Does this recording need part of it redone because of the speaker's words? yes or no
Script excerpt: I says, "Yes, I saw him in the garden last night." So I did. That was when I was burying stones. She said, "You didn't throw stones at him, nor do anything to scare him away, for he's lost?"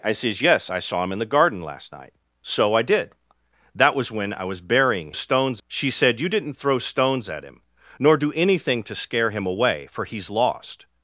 no